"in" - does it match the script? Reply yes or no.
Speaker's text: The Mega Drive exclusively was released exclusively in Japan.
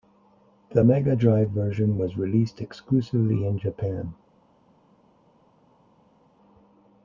yes